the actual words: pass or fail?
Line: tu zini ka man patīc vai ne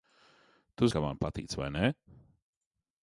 fail